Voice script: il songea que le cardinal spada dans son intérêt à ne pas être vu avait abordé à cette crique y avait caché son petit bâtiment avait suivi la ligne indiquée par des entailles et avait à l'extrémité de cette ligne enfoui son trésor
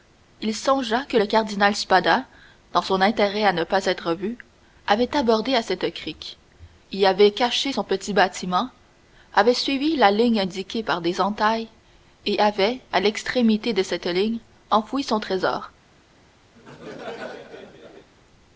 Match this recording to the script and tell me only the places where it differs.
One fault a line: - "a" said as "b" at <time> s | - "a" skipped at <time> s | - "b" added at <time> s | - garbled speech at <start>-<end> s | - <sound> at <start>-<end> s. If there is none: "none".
- laugh at 16.5-18.1 s